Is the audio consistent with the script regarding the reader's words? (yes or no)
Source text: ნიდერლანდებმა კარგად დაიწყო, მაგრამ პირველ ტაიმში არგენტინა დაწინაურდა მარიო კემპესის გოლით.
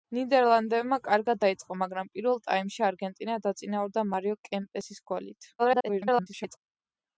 no